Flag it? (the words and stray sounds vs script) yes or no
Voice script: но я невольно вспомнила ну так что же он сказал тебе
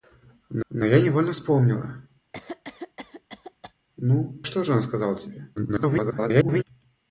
yes